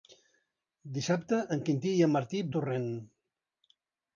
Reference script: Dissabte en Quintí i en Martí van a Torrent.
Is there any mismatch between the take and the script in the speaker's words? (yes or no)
yes